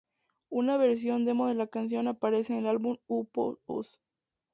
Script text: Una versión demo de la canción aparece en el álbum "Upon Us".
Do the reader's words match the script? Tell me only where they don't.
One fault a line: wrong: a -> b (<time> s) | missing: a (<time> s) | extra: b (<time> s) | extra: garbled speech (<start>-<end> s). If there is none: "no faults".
no faults